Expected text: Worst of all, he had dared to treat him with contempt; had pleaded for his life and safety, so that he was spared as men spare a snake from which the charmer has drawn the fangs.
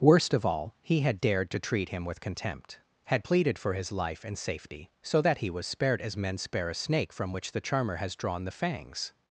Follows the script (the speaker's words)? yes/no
yes